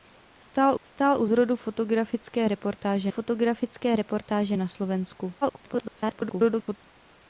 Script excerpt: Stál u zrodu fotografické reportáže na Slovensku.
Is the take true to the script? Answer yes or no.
no